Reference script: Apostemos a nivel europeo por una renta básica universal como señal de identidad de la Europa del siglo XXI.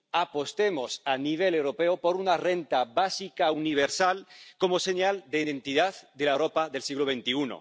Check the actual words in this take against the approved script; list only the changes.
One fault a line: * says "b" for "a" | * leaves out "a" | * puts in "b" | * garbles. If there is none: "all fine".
all fine